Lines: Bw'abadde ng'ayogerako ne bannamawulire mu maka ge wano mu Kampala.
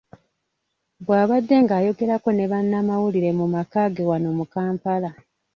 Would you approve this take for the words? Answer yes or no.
yes